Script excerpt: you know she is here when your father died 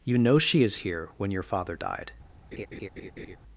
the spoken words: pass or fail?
pass